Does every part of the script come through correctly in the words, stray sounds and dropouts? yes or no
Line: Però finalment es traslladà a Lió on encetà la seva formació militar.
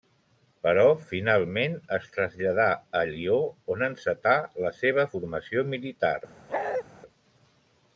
no